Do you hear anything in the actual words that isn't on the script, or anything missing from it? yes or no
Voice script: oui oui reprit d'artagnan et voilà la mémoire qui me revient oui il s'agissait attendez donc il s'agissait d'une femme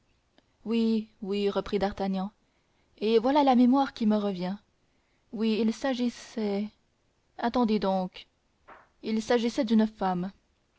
no